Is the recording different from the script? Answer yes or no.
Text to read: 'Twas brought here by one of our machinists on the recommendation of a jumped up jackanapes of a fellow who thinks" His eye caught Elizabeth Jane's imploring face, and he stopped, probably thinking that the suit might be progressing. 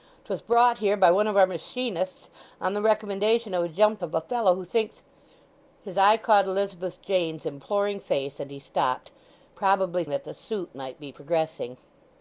yes